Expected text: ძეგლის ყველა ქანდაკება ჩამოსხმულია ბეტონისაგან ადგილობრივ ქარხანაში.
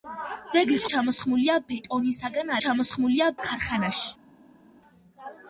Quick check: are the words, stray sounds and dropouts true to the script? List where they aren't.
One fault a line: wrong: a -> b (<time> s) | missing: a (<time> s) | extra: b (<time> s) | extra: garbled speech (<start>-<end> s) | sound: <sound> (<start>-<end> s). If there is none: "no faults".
missing: ყველა ქანდაკება (0.8 s)
wrong: ადგილობრივ -> ჩამოსხმულია (2.6 s)